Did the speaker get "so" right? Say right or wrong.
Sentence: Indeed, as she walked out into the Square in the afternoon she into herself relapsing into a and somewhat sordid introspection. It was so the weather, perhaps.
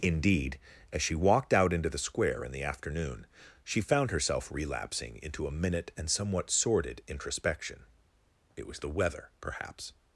wrong